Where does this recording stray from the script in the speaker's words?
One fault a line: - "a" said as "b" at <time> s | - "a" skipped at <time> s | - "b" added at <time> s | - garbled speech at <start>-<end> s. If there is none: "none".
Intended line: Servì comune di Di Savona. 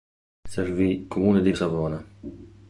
none